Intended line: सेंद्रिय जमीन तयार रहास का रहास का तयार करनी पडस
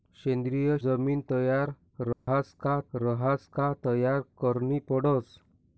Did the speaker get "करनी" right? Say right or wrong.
right